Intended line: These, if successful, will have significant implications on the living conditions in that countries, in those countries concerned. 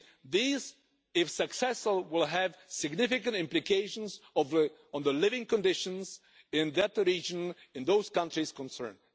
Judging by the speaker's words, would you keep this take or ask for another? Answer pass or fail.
fail